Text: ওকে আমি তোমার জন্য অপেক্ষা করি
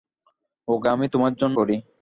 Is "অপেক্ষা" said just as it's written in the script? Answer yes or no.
no